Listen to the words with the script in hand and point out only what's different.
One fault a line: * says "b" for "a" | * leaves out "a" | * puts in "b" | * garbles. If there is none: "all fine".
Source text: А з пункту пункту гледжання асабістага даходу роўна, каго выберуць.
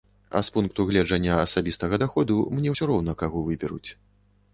* leaves out "пункту"
* puts in "мне ўсё"